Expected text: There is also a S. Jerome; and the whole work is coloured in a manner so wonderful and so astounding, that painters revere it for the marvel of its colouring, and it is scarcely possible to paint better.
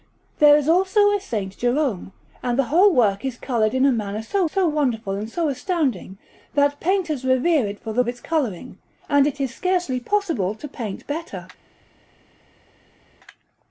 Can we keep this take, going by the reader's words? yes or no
no